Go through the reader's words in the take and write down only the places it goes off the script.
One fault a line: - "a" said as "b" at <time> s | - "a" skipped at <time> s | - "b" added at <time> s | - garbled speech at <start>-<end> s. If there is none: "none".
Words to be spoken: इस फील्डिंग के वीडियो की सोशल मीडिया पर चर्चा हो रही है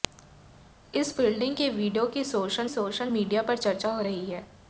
- "सोशल" added at 2.7 s